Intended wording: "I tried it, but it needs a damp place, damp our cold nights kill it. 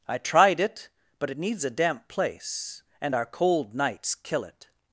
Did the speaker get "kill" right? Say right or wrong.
right